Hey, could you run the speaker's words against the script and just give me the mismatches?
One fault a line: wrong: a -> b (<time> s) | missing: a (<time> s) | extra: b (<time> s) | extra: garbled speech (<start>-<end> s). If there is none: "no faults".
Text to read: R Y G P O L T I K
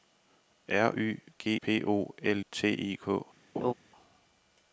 no faults